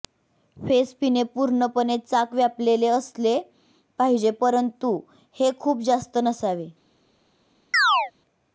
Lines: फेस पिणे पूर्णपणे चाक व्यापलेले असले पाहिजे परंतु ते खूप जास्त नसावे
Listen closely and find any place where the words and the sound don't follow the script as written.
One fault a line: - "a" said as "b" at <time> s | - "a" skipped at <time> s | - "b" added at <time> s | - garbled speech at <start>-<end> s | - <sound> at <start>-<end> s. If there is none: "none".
- "ते" said as "हे" at 5.3 s
- chirp at 7.7-8.1 s